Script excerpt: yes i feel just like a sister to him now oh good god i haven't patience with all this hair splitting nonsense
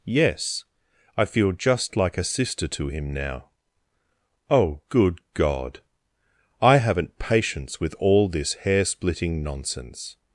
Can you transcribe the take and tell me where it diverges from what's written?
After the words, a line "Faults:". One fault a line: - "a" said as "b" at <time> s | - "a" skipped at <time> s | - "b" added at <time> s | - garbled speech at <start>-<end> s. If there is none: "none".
yes i feel just like a sister to him now oh good god i haven't patience with all this hair splitting nonsense
Faults:
none